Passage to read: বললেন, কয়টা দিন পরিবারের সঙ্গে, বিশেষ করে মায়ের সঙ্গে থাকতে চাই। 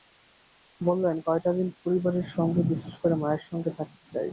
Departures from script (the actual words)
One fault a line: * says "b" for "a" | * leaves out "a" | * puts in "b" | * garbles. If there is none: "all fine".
all fine